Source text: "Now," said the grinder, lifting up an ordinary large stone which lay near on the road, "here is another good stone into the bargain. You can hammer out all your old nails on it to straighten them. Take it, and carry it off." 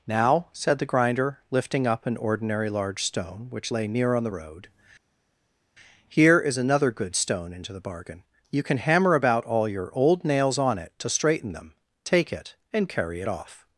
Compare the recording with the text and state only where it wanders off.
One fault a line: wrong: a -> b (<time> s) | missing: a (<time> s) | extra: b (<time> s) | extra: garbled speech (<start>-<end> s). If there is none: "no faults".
wrong: out -> about (9.1 s)